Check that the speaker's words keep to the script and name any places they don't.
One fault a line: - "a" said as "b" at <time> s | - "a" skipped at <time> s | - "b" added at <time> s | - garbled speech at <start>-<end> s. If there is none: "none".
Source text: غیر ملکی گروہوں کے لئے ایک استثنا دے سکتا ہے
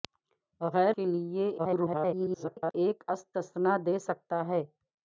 - "ملکی گروہوں" skipped at 0.9 s
- garbled speech at 1.6-2.7 s